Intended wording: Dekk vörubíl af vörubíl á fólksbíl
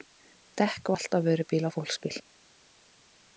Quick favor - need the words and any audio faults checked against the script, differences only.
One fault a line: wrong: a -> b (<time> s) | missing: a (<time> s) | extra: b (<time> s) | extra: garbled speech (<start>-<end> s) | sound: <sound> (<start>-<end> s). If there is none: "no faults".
wrong: vörubíl -> valt (0.9 s)